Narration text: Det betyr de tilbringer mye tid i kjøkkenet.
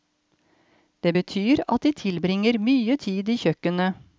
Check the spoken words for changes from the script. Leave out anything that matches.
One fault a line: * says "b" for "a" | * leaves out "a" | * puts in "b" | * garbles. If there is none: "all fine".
* puts in "at"